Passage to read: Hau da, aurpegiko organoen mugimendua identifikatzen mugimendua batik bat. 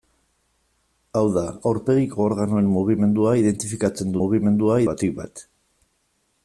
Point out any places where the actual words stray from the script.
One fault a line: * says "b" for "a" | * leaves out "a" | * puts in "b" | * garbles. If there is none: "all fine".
all fine